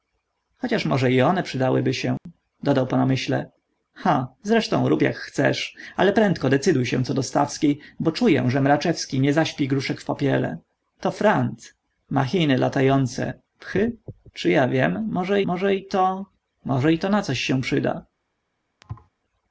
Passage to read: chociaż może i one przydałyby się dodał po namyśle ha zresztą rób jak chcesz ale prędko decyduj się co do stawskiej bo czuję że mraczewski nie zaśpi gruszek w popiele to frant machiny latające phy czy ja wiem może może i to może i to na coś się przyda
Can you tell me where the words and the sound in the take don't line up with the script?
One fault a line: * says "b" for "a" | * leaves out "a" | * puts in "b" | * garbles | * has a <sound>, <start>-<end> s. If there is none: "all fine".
* has a dropout, 2.2-2.3 s
* has a thud, 18.8-19.1 s